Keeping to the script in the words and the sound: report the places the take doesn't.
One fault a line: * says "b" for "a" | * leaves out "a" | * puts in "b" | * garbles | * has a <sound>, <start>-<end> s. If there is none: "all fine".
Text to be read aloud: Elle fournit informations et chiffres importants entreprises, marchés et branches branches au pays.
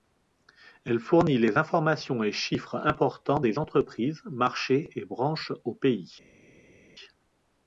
* puts in "les"
* puts in "des"
* leaves out "branches"